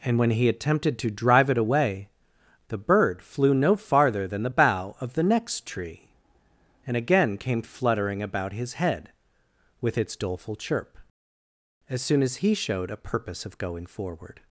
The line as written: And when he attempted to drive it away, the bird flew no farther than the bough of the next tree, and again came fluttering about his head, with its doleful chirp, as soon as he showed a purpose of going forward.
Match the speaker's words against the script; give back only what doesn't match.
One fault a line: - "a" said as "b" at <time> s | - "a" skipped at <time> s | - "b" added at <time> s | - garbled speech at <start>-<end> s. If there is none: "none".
none